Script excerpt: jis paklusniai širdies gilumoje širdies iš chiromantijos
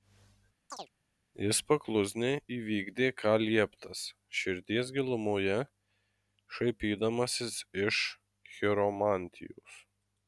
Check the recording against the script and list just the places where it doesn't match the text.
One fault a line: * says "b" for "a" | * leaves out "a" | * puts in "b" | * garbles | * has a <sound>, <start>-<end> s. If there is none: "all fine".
* has a chirp, 0.7-0.9 s
* puts in "įvykdė ką lieptas"
* says "šaipydamasis" for "širdies"